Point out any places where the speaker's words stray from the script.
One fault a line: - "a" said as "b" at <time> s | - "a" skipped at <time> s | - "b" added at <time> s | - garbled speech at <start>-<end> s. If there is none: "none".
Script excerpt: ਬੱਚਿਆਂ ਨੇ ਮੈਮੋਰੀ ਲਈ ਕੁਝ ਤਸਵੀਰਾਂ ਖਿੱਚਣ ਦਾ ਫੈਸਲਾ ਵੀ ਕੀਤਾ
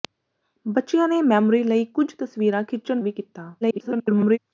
- "ਦਾ ਫੈਸਲਾ" skipped at 3.0 s
- garbled speech at 3.6-4.4 s